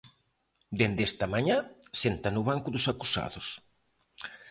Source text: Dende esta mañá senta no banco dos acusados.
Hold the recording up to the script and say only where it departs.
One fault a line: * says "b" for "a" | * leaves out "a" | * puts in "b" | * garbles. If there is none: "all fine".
all fine